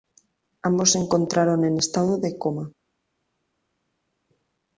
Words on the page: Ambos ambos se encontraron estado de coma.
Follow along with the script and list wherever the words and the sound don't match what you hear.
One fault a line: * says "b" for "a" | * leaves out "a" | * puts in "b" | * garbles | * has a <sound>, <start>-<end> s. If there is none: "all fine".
* leaves out "ambos"
* puts in "en"